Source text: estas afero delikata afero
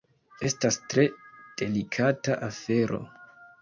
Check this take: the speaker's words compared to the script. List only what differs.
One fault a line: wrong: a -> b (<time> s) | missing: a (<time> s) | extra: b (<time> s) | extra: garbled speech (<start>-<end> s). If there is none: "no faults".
wrong: afero -> tre (0.9 s)